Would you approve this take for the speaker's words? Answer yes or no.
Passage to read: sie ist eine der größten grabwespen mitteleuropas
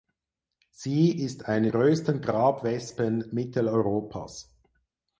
no